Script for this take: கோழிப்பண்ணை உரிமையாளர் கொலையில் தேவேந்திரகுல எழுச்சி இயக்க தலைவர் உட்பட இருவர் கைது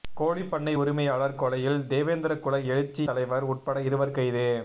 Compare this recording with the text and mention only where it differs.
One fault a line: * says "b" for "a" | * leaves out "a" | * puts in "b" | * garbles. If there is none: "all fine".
* leaves out "இயக்க"